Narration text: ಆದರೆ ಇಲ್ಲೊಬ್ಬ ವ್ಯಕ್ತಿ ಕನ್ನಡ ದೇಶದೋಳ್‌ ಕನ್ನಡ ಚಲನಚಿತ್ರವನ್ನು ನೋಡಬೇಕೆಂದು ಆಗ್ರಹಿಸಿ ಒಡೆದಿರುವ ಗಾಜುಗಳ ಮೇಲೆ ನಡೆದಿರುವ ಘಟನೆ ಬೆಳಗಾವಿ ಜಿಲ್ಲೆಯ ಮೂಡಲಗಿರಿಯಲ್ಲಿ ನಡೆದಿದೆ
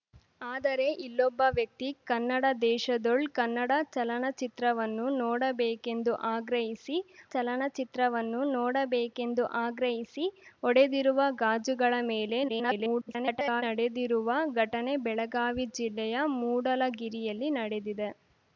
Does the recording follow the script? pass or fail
fail